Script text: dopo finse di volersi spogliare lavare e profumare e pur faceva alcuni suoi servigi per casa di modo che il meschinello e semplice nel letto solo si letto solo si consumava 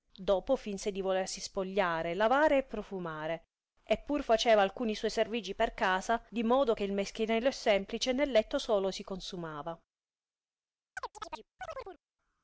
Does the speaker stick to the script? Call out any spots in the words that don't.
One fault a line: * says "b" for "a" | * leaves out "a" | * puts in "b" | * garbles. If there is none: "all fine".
* leaves out "letto solo si"